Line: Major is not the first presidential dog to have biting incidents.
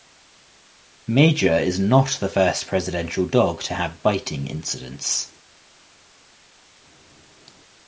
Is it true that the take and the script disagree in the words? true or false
false